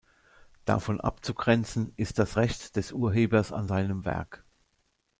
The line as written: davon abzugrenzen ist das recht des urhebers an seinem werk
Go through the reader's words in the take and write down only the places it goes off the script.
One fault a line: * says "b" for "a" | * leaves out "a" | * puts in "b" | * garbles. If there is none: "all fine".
all fine